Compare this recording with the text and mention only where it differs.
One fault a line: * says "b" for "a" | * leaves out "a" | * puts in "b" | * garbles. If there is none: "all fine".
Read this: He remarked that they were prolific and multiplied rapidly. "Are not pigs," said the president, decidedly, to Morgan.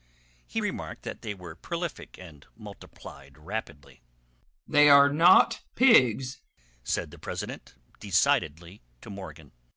* puts in "They"